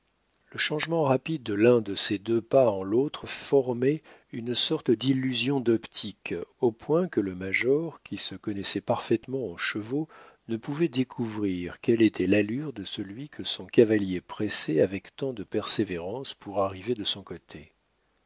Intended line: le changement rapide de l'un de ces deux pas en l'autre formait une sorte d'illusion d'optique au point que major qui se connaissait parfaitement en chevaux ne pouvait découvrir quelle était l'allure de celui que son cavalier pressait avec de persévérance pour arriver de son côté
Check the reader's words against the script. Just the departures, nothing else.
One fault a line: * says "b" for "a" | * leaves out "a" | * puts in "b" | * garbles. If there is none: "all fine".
* puts in "le"
* puts in "tant"